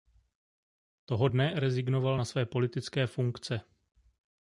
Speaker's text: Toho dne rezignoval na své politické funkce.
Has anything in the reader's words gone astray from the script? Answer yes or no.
no